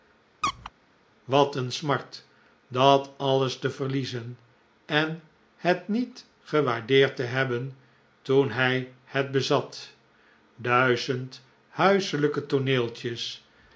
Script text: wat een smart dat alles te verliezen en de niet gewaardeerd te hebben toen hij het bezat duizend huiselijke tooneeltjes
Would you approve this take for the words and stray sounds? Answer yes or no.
no